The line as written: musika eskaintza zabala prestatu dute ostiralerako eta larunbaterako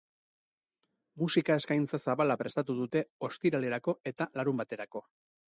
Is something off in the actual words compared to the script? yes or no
no